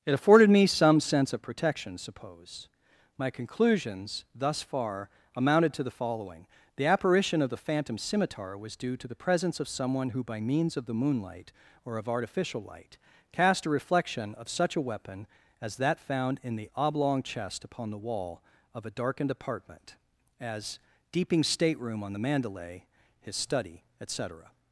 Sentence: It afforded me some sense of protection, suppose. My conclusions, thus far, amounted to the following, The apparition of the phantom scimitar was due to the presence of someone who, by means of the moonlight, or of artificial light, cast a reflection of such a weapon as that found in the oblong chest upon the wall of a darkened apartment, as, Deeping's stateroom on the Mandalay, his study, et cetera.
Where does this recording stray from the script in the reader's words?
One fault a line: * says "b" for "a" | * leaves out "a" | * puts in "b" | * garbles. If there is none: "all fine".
all fine